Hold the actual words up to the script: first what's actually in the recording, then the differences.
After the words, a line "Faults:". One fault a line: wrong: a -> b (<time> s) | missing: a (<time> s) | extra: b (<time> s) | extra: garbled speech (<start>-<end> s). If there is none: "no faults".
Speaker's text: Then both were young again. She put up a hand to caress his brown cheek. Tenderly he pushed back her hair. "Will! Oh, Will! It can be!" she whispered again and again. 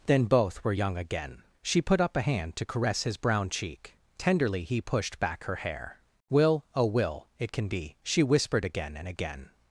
Then both were young again. She put up a hand to caress his brown cheek. Tenderly he pushed back her hair. "Will! Oh, Will! It can be!" she whispered again and again.
Faults:
no faults